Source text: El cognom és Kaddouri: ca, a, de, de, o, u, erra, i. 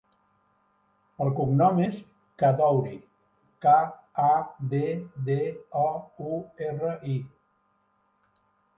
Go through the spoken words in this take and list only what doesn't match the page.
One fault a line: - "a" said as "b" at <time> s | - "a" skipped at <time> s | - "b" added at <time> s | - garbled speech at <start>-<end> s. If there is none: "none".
none